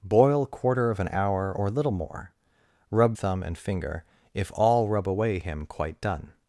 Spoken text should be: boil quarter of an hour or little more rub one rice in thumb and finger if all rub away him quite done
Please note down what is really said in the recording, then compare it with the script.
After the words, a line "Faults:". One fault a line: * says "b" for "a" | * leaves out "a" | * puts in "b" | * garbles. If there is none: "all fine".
boil quarter of an hour or little more rub thumb and finger if all rub away him quite done
Faults:
* leaves out "one rice in"